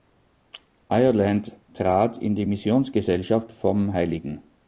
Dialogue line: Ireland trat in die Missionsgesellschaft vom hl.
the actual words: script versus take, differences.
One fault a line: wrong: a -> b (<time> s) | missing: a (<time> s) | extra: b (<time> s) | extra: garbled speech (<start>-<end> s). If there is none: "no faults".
no faults